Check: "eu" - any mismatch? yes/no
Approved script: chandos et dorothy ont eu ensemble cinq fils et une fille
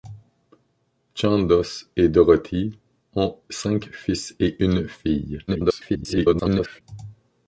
yes